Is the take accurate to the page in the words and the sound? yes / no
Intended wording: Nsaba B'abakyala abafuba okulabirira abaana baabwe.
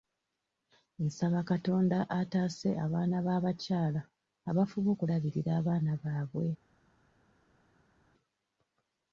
no